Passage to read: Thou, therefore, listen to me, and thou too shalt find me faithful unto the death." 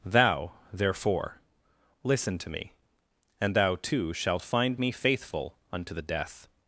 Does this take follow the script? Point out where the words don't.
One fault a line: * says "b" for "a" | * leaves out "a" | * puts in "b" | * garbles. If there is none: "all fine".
all fine